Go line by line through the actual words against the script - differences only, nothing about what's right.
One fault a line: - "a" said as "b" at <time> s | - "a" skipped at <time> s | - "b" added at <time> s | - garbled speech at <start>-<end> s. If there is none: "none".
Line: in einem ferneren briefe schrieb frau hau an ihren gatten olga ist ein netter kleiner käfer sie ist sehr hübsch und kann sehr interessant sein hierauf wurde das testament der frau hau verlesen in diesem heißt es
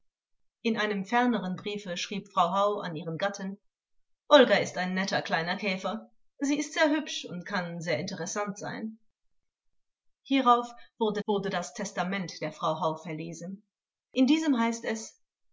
- "wurde" added at 11.2 s